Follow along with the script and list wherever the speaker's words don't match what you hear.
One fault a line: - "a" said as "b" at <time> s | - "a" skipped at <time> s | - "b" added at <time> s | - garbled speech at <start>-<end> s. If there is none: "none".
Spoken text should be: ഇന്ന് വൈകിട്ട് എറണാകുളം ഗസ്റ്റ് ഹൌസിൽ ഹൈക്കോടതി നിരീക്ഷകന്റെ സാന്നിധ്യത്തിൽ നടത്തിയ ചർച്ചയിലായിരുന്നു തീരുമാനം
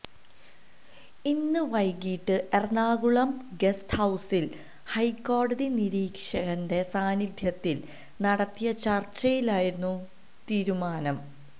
none